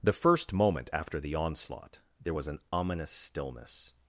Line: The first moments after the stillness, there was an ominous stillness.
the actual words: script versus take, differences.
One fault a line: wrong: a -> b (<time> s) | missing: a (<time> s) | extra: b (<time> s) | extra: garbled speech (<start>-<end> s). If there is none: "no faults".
wrong: moments -> moment (0.5 s)
wrong: stillness -> onslaught (1.4 s)